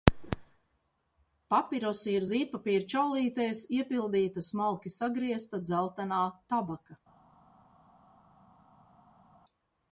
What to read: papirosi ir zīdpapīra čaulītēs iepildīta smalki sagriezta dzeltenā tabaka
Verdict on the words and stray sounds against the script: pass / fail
pass